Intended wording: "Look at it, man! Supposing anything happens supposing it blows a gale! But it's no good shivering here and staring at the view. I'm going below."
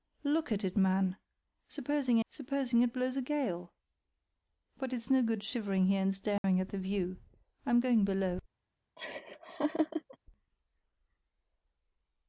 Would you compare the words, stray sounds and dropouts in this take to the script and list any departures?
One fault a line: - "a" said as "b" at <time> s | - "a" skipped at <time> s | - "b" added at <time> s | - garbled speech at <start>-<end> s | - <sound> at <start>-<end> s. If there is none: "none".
- "anything happens" skipped at 2.2 s
- dropout at 6.4-6.4 s
- laugh at 9.0-10.2 s